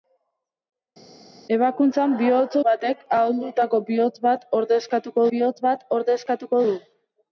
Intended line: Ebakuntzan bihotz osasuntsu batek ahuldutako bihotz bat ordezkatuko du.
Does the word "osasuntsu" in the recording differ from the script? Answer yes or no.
yes